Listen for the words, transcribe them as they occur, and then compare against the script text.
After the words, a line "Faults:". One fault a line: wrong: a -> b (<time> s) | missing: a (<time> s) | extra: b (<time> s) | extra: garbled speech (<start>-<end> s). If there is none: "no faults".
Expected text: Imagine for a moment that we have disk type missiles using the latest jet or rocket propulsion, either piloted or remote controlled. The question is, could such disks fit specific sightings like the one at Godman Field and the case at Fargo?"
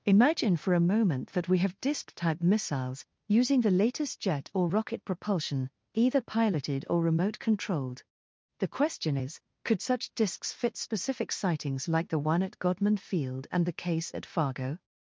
Imagine for a moment that we have disk type missiles using the latest jet or rocket propulsion, either piloted or remote controlled. The question is, could such disks fit specific sightings like the one at Godman Field and the case at Fargo?"
Faults:
no faults